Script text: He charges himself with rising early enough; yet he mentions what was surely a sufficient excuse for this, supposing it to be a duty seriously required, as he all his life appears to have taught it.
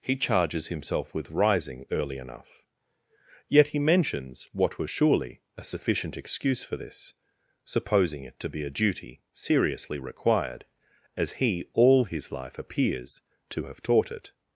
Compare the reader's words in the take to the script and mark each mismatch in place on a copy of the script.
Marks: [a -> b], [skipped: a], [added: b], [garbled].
He charges himself with rising early enough; yet he mentions what was surely a sufficient excuse for this, supposing it to be a duty seriously required, as he all his life appears to have taught it.